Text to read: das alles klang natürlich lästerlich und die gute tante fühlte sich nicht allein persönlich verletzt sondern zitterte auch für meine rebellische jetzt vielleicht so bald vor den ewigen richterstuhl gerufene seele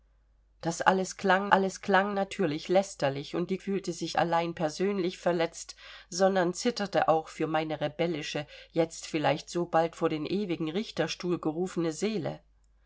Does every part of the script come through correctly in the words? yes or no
no